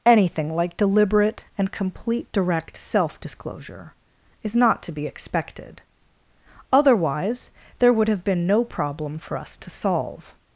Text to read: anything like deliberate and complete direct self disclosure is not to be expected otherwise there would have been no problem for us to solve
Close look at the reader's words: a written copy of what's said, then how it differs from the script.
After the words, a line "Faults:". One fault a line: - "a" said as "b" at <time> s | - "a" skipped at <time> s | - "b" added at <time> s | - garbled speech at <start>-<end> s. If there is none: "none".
anything like deliberate and complete direct self disclosure is not to be expected otherwise there would have been no problem for us to solve
Faults:
none